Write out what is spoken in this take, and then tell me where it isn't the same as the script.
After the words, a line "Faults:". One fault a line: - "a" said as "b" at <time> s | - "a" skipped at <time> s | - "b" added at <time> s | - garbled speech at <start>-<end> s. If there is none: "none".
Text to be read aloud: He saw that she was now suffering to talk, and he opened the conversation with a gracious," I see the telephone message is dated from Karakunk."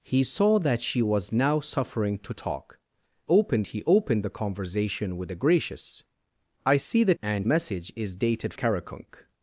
He saw that she was now suffering to talk, opened he opened the conversation with a gracious," I see the and message is dated Karakunk."
Faults:
- "and" said as "opened" at 3.3 s
- "telephone" said as "and" at 7.2 s
- "from" skipped at 8.5 s